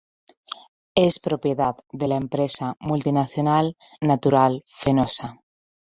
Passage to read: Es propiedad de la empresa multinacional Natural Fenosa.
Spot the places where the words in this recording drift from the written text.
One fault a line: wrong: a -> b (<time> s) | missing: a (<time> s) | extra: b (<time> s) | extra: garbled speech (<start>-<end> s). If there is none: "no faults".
no faults